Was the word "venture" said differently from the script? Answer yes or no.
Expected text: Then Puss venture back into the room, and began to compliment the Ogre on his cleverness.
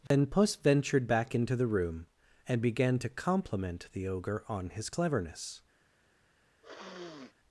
yes